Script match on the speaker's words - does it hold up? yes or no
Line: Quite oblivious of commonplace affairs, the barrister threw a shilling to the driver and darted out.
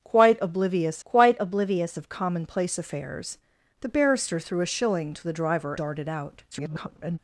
no